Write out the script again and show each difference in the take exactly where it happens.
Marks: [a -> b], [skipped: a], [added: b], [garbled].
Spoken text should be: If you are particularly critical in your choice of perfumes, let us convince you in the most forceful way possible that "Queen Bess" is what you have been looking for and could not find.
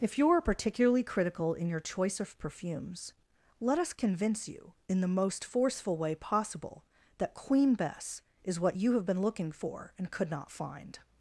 If you are particularly critical in your choice of perfumes, let us convince you in the most forceful way possible that "Queen Bess" is what you have been looking for and could not find.